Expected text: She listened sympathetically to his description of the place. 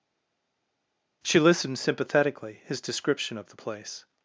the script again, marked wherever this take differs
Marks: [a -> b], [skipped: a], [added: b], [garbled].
She listened sympathetically [skipped: to] his description of the place.